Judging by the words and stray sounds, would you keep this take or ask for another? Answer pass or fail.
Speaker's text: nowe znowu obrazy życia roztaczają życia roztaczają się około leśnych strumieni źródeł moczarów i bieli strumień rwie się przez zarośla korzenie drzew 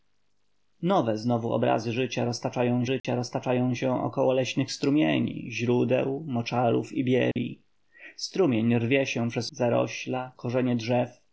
fail